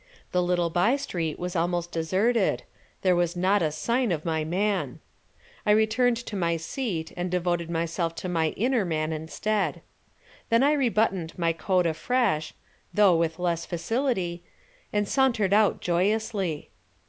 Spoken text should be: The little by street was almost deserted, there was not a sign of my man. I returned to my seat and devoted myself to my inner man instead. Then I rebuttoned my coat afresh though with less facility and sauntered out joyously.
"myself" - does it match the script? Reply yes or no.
yes